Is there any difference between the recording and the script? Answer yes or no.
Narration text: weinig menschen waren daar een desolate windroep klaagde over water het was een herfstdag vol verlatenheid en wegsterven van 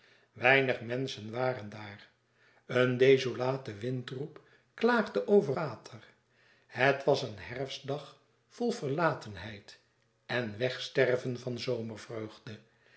no